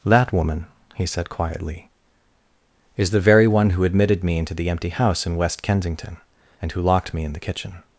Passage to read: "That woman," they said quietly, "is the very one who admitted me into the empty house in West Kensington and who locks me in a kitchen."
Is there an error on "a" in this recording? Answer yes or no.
yes